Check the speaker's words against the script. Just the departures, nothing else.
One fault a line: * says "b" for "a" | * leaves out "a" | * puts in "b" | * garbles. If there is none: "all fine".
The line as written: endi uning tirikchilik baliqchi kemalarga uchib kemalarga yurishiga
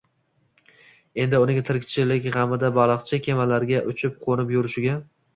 * puts in "g‘amida"
* says "qo‘nib" for "kemalarga"